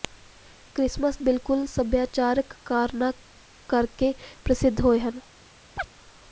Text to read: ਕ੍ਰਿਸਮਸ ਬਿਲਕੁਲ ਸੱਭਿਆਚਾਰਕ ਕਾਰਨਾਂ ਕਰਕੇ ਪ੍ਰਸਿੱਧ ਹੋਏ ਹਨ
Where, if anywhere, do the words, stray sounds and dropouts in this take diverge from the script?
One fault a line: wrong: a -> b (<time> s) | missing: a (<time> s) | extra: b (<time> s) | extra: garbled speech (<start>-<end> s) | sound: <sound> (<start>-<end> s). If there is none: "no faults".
sound: chirp (5.8-5.9 s)